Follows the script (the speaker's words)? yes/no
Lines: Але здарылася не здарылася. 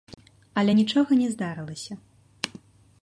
no